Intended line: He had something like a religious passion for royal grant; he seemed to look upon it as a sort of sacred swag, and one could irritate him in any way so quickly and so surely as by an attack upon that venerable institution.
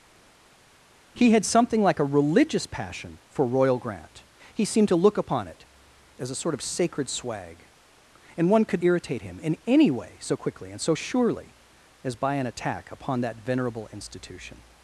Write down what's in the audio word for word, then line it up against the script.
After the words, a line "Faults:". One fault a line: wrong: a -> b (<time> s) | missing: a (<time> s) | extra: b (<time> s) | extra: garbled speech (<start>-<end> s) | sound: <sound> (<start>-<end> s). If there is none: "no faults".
He had something like a religious passion for royal grant; he seemed to look upon it as a sort of sacred swag, and one could irritate him in any way so quickly and so surely as by an attack upon that venerable institution.
Faults:
no faults